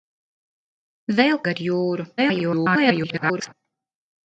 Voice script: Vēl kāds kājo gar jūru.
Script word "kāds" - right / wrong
wrong